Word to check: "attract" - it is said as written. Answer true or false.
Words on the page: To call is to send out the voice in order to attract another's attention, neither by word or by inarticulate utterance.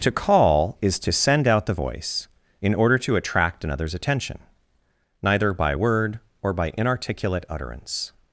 true